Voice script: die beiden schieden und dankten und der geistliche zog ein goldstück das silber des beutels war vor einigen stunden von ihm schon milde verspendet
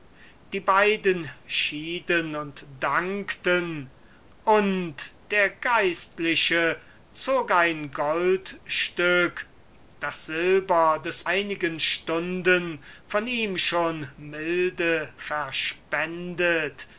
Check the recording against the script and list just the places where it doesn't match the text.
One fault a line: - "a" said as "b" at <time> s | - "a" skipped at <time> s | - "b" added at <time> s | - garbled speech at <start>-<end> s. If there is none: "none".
- "beutels war vor" skipped at 11.2 s